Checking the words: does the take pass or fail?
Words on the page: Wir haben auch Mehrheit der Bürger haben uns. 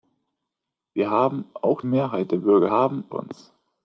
pass